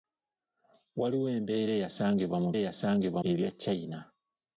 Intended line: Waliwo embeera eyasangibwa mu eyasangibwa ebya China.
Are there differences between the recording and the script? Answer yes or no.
no